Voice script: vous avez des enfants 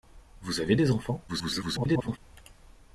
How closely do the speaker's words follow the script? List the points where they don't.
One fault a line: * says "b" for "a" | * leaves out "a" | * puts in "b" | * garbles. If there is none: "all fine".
* garbles